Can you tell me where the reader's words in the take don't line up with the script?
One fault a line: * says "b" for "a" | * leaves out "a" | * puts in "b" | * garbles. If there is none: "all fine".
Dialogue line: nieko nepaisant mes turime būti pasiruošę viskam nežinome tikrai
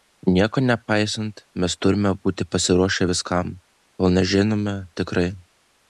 * puts in "kol"